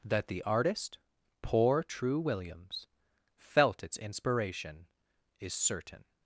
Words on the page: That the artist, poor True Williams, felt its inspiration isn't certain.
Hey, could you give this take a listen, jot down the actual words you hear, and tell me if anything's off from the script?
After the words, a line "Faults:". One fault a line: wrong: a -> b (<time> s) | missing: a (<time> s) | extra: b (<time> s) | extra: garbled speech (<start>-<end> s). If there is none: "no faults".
That the artist, poor True Williams, felt its inspiration is certain.
Faults:
wrong: isn't -> is (5.4 s)